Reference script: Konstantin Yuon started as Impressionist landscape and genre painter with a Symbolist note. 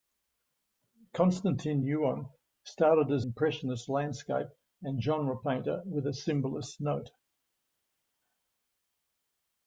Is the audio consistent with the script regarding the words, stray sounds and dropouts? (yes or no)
yes